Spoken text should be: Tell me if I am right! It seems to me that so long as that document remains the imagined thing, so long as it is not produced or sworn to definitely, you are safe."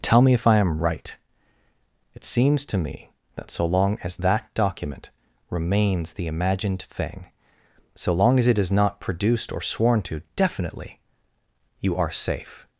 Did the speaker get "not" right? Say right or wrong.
right